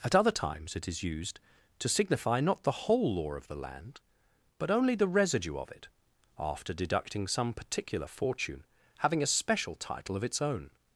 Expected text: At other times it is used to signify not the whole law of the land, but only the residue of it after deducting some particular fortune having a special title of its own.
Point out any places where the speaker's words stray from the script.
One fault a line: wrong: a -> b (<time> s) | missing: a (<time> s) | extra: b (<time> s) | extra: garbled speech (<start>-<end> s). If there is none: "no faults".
no faults